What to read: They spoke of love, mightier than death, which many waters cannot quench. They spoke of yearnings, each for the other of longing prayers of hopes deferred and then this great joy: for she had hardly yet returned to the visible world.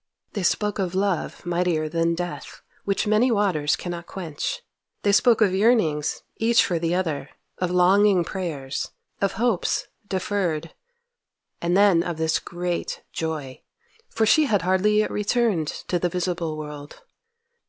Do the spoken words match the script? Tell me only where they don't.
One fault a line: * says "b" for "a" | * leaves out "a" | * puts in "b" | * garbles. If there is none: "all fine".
* puts in "of"